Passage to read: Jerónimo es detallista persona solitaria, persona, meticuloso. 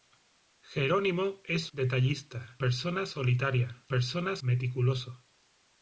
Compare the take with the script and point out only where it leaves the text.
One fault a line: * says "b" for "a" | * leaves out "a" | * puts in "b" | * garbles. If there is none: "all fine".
all fine